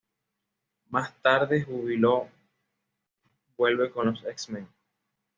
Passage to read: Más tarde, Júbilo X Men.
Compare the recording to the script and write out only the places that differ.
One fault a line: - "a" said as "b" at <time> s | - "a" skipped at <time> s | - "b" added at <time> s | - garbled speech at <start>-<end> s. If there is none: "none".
- "vuelve con los" added at 3.6 s